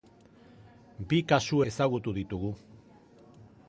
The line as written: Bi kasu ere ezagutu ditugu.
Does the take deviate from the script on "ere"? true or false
true